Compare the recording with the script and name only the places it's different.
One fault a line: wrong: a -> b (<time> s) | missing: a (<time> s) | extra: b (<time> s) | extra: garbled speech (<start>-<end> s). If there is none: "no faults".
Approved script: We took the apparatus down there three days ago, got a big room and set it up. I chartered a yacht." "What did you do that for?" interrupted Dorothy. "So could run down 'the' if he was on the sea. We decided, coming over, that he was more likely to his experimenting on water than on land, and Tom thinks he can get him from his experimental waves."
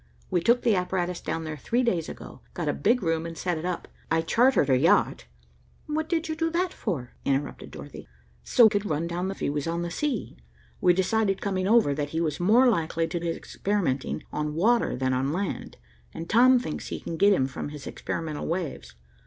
no faults